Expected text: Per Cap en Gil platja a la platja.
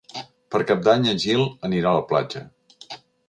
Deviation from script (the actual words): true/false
true